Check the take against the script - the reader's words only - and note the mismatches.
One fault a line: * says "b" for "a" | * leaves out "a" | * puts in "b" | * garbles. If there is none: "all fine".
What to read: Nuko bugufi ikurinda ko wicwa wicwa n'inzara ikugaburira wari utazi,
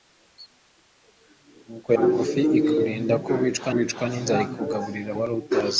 all fine